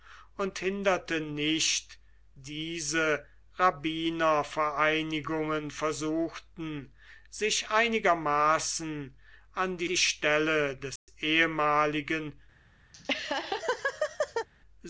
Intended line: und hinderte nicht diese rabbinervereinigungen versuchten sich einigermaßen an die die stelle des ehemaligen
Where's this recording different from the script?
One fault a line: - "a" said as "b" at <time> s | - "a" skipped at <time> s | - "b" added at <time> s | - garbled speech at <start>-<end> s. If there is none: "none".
none